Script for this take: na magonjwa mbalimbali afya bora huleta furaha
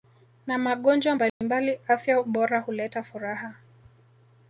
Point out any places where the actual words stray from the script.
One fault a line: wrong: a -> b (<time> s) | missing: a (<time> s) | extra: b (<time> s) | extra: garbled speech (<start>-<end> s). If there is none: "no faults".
no faults